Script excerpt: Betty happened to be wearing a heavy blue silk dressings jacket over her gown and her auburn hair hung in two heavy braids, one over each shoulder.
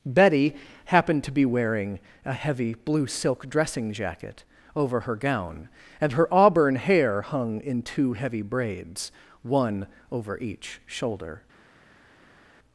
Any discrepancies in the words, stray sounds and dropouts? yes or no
yes